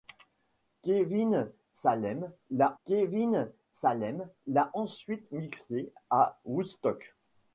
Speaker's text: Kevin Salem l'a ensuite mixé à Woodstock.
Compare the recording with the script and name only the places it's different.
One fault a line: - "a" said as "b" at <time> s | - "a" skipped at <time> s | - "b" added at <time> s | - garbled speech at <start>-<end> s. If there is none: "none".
- "kevin Salem l'a" added at 2.8 s